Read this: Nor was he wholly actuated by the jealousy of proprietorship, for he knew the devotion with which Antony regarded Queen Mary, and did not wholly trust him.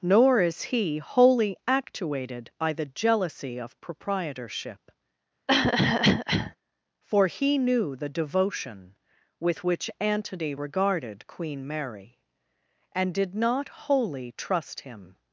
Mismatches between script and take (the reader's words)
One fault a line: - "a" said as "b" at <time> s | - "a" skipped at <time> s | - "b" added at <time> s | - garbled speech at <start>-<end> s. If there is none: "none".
- "was" said as "is" at 0.4 s